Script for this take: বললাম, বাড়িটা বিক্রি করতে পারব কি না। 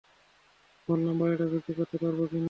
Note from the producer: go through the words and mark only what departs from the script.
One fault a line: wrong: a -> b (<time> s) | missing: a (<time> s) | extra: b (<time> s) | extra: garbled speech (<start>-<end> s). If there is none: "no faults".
no faults